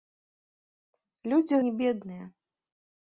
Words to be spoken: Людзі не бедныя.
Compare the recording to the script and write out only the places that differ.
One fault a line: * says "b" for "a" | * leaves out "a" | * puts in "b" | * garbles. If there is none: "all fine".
all fine